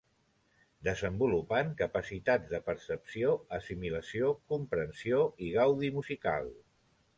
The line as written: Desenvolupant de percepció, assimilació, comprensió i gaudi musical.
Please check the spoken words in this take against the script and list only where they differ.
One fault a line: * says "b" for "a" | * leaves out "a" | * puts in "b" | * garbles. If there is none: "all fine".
* puts in "capacitats"